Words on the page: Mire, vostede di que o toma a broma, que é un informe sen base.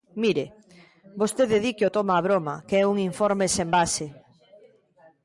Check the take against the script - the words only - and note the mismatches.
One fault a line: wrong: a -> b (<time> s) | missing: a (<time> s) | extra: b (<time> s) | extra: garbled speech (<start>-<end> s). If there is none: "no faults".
no faults